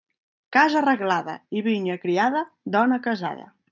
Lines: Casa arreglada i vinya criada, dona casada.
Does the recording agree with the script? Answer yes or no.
yes